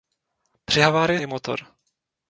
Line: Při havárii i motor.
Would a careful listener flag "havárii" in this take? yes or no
no